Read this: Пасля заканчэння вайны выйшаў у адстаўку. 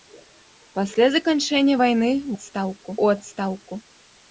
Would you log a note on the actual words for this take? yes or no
yes